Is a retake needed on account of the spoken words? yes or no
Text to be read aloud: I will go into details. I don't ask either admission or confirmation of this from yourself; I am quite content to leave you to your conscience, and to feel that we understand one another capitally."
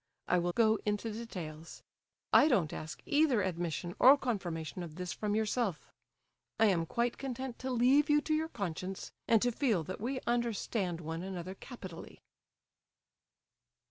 no